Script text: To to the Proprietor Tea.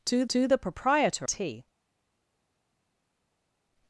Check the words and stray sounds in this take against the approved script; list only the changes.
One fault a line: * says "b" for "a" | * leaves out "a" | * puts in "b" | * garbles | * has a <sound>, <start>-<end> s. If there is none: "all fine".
all fine